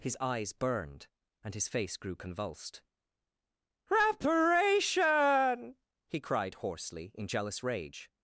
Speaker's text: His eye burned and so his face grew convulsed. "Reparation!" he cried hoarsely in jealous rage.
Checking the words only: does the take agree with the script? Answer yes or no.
no